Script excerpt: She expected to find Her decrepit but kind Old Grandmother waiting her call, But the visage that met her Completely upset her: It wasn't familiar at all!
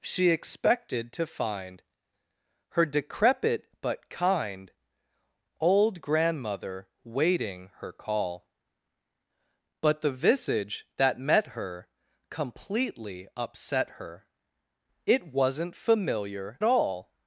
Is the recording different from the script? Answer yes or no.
yes